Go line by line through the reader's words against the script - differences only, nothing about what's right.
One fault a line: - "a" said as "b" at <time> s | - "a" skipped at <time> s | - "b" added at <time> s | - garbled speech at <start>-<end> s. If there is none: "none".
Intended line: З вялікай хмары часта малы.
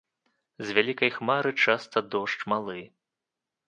- "дождж" added at 2.2 s